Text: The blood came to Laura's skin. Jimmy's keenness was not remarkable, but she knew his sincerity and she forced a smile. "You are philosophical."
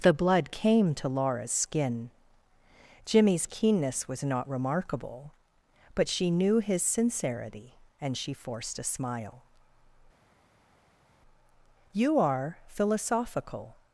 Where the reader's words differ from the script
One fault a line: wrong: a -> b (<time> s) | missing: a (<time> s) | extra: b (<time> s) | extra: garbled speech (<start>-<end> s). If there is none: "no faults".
no faults